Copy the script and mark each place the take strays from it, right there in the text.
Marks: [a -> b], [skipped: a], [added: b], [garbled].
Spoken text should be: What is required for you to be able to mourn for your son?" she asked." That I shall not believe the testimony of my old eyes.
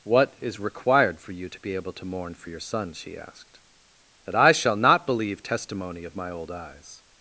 What is required for you to be able to mourn for your son?" she asked." That I shall not believe [skipped: the] testimony of my old eyes.